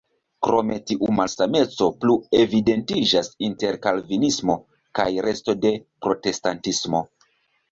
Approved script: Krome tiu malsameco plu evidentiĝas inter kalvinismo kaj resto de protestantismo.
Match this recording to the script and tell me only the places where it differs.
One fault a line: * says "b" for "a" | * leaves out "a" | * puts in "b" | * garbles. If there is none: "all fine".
all fine